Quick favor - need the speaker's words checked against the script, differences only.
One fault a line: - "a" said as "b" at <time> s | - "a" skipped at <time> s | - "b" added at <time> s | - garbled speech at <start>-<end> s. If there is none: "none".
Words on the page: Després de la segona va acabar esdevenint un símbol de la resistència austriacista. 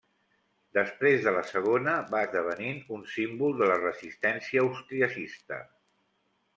- "acabar" skipped at 2.2 s